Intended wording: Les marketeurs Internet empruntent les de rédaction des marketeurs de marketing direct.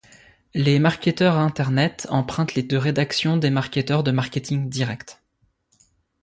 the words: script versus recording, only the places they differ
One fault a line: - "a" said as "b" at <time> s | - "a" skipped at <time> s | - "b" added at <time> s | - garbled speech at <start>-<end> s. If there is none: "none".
none